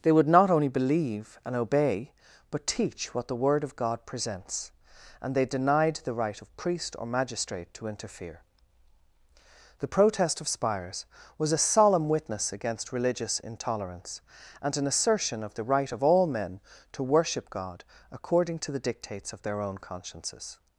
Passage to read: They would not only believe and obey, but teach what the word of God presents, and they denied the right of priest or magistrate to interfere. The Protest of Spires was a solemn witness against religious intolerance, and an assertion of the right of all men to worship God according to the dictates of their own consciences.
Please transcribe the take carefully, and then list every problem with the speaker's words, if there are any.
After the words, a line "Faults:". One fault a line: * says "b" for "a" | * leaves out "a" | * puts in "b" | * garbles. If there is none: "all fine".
They would not only believe and obey, but teach what the word of God presents, and they denied the right of priest or magistrate to interfere. The Protest of Spires was a solemn witness against religious intolerance, and an assertion of the right of all men to worship God according to the dictates of their own consciences.
Faults:
all fine